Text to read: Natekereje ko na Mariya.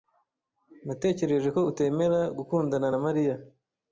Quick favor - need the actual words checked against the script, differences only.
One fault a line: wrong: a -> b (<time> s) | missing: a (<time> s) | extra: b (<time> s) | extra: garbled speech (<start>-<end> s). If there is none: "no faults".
extra: utemera gukundana (1.7 s)